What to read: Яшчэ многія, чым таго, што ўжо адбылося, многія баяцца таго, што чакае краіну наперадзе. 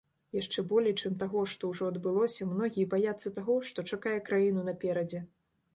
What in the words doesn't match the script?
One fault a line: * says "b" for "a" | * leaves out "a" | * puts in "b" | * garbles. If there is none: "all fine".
* says "болей" for "многія"